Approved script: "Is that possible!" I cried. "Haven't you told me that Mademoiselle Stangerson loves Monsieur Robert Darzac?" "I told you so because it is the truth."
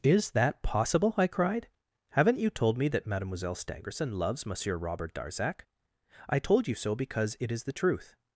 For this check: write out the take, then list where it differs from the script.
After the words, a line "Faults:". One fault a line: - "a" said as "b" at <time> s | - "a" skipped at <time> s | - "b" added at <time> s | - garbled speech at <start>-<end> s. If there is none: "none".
"Is that possible!" I cried. "Haven't you told me that Mademoiselle Stangerson loves Monsieur Robert Darzac?" "I told you so because it is the truth."
Faults:
none